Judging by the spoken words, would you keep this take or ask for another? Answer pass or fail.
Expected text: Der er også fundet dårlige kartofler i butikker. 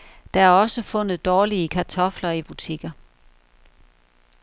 pass